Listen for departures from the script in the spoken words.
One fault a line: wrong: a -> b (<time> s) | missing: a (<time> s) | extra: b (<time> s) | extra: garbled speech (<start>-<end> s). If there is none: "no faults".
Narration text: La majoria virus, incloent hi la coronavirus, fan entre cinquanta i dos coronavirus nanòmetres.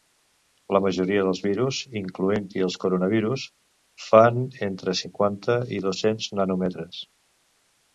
extra: dels (1.3 s)
wrong: la -> els (2.7 s)
wrong: coronavirus -> cents (6.1 s)